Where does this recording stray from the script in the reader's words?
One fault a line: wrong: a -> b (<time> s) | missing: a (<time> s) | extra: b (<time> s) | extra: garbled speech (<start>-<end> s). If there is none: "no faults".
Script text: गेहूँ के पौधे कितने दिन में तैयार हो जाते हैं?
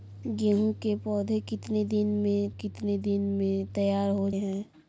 extra: कितने दिन में (2.5 s)
missing: जाते (4.3 s)